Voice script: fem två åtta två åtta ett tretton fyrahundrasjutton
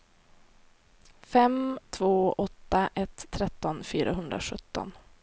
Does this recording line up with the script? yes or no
no